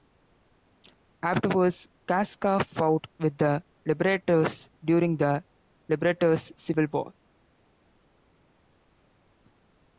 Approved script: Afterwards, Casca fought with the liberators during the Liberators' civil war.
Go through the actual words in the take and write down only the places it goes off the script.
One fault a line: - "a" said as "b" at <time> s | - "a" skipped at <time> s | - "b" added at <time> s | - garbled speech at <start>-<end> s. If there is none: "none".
none